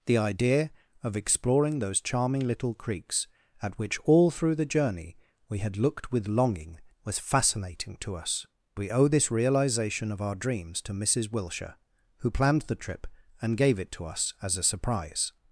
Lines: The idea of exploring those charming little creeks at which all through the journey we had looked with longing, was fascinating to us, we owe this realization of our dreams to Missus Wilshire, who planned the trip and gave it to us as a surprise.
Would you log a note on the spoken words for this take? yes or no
no